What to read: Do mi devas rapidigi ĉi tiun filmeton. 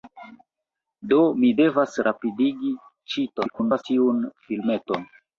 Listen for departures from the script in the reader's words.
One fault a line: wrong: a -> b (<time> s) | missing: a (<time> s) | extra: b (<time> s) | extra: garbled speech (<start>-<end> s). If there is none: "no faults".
extra: garbled speech (3.4-3.8 s)